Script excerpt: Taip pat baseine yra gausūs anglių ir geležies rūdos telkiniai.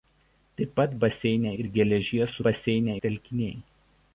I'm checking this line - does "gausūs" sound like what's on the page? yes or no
no